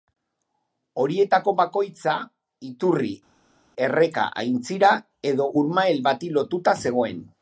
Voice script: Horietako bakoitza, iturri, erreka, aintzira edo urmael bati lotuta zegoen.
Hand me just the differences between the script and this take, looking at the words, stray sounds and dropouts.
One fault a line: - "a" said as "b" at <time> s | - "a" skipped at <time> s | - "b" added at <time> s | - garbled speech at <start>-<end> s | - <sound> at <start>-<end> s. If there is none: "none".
none